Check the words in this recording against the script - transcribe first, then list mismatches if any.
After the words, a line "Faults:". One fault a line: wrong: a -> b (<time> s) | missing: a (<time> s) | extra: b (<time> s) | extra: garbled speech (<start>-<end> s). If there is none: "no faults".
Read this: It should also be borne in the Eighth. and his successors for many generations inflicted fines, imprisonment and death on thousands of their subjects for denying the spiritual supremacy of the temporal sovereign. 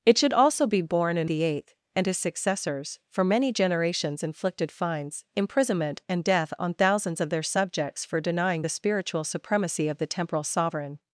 It should also be borne in the Eighth. and his successors for many generations inflicted fines, imprisonment and death on thousands of their subjects for denying the spiritual supremacy of the temporal sovereign.
Faults:
no faults